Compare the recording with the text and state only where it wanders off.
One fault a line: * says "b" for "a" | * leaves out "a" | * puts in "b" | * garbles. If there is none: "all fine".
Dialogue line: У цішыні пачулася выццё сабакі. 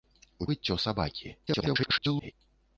* leaves out "цішыні пачулася"
* garbles